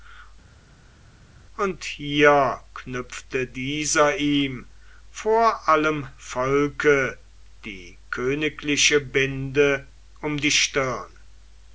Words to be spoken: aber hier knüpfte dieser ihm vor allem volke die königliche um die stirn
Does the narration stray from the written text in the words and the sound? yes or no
yes